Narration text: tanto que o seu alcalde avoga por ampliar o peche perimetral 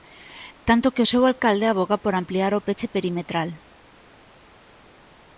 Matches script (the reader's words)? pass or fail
pass